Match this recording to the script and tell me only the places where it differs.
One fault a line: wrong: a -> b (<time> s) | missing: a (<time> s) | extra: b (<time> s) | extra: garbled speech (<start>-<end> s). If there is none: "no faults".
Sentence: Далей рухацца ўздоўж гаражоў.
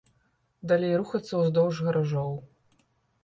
no faults